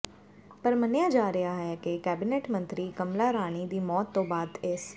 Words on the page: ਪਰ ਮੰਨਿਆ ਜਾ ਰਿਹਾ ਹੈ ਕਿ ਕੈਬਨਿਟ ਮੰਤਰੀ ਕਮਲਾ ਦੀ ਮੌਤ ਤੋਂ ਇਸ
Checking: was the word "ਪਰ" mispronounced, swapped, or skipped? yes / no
no